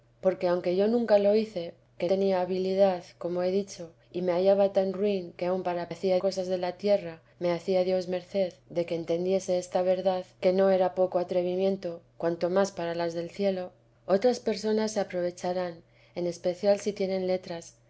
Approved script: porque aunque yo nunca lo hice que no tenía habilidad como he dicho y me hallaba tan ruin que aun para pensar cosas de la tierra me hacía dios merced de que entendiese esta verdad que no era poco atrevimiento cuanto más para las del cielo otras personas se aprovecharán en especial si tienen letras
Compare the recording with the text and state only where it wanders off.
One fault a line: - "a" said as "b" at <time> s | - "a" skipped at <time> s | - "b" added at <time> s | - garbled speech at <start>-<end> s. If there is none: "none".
- "no" skipped at 2.1 s
- "pensar" said as "hacía" at 5.9 s